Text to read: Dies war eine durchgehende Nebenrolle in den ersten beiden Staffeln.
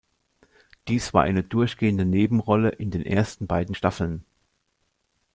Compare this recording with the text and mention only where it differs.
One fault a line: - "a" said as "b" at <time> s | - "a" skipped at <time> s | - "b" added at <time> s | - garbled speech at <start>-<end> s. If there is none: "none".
none